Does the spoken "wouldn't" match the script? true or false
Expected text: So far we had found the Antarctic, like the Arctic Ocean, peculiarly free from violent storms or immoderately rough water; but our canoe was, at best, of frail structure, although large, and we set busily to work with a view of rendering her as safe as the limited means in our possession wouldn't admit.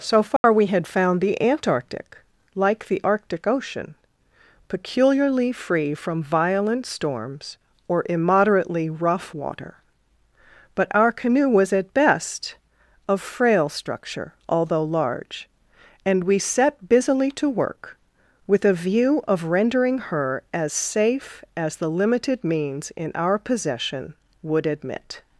false